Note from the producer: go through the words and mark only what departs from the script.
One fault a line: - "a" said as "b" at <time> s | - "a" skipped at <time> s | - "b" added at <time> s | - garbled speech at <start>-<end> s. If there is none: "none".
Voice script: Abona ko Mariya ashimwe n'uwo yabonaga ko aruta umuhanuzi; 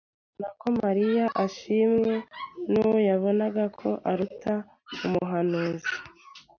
none